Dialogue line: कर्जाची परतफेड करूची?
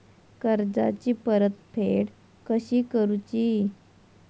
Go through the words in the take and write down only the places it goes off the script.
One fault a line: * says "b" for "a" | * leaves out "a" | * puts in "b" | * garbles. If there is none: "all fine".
* puts in "कशी"